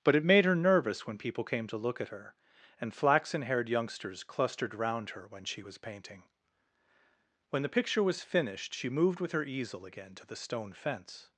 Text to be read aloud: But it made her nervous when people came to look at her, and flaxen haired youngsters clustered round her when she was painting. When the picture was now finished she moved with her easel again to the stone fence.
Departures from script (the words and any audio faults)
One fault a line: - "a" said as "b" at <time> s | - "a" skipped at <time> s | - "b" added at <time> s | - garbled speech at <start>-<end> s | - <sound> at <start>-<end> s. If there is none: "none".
- "now" skipped at 8.2 s